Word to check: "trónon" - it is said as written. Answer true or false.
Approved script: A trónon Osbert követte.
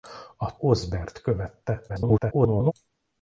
false